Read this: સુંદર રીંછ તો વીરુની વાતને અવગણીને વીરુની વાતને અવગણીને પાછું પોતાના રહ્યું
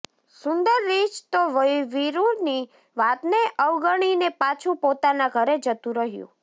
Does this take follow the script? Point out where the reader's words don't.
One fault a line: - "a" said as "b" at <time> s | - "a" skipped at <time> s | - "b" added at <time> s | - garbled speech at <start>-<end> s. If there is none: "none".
- "વીરુની વાતને અવગણીને પાછું પોતાના" said as "પાછું પોતાના ઘરે જતું" at 4.4 s